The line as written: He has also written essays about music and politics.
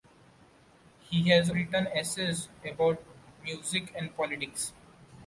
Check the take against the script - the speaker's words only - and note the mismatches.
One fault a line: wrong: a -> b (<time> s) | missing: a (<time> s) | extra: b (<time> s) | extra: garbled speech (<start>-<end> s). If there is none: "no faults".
missing: also (1.5 s)